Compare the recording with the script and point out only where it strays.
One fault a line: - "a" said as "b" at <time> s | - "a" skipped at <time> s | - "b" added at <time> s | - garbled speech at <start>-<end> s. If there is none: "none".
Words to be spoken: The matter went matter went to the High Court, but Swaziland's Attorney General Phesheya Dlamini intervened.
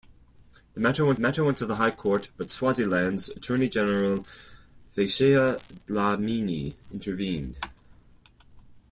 none